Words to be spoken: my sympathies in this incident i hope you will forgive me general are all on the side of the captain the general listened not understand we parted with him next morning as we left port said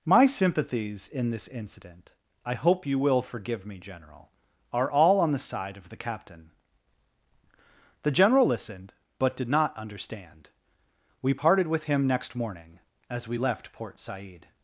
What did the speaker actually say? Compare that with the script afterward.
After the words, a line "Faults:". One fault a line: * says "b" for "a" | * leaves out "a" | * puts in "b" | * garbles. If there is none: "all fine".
my sympathies in this incident i hope you will forgive me general are all on the side of the captain the general listened but did not understand we parted with him next morning as we left port said
Faults:
* puts in "but did"